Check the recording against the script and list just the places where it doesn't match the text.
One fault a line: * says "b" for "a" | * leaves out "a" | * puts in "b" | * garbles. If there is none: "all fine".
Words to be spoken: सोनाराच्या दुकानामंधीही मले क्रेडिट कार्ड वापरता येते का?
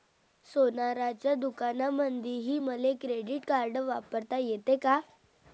all fine